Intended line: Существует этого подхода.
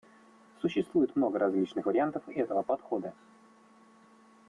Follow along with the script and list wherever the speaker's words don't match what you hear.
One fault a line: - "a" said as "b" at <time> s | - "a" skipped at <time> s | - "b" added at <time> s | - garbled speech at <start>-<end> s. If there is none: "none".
- "много различных вариантов" added at 1.1 s